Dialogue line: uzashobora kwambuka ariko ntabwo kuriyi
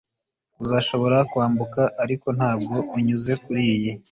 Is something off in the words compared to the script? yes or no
yes